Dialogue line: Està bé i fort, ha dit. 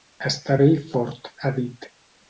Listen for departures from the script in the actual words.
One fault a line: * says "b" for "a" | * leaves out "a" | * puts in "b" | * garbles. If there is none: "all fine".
all fine